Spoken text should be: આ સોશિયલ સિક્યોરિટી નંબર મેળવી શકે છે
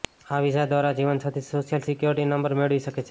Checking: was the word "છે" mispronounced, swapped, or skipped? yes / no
no